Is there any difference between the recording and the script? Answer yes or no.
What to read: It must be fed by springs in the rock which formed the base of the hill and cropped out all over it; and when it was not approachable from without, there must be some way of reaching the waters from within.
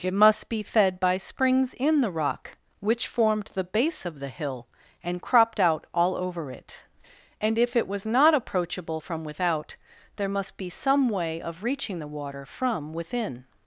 yes